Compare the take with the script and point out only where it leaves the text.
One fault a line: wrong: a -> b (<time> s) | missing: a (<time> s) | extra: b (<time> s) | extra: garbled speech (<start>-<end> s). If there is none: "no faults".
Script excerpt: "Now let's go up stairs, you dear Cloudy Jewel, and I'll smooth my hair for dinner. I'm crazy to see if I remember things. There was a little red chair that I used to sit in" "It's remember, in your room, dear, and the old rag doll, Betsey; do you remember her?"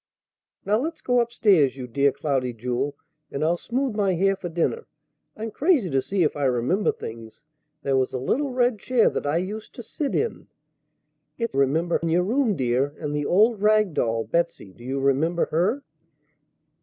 no faults